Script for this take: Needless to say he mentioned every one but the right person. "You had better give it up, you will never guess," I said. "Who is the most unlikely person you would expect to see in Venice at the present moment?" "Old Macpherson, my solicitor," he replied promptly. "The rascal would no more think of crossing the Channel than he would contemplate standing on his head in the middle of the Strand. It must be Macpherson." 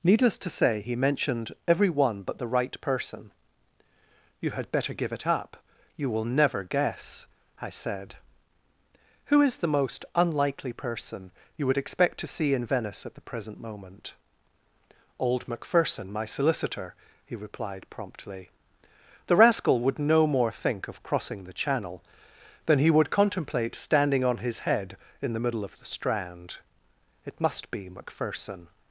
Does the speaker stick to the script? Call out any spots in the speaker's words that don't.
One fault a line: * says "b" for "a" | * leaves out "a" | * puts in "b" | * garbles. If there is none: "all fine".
all fine